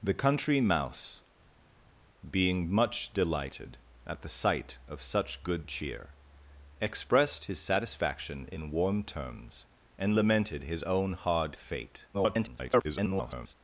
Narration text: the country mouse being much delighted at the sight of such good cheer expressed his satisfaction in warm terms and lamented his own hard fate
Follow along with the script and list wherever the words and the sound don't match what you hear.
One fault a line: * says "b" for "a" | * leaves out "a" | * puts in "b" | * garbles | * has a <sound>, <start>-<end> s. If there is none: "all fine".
* garbles